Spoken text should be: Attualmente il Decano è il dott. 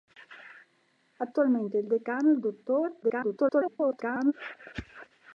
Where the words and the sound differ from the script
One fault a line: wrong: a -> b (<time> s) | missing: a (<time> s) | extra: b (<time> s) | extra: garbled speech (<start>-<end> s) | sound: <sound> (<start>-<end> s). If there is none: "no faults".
extra: garbled speech (3.0-4.3 s)